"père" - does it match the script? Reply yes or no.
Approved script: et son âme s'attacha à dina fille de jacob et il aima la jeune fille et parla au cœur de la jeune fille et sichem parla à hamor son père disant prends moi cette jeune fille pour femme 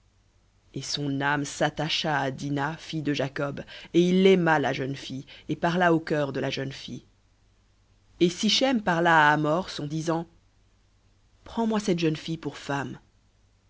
no